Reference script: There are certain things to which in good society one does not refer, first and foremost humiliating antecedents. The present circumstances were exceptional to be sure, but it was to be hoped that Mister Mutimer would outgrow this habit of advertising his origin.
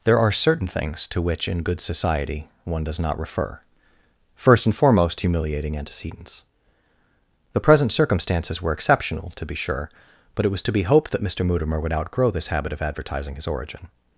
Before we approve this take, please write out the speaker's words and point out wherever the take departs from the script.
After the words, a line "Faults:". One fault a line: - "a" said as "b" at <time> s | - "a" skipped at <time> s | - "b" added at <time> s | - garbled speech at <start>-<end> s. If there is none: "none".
There are certain things to which in good society one does not refer, first and foremost humiliating antecedents. The present circumstances were exceptional to be sure, but it was to be hoped that Mister Mutimer would outgrow this habit of advertising his origin.
Faults:
none